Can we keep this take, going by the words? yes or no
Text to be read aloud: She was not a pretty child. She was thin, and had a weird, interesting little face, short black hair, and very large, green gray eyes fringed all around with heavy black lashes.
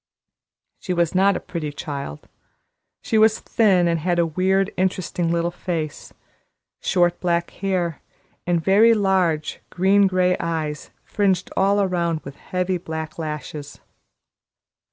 yes